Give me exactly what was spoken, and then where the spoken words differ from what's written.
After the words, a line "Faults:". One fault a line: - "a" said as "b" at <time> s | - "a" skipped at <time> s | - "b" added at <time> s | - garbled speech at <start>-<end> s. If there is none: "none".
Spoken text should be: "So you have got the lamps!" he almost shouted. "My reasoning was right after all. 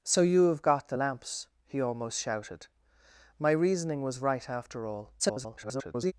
"So you have got the lamps!" he almost shouted. "My reasoning was right after all. [garbled]
Faults:
- garbled speech at 5.2-6.1 s